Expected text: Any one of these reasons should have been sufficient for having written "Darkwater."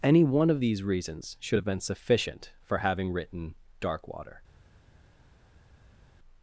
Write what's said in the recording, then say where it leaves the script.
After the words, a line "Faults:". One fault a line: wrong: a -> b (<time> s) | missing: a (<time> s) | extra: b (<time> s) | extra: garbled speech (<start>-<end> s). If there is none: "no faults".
Any one of these reasons should have been sufficient for having written "Darkwater."
Faults:
no faults